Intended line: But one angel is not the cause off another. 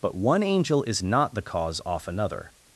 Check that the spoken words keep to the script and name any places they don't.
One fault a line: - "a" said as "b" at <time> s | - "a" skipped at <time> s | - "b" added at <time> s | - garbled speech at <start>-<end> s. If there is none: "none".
none